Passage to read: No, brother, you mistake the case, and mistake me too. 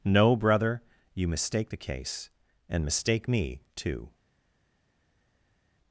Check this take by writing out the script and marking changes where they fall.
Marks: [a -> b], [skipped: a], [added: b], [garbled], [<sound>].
No, brother, you mistake the case, and mistake me too.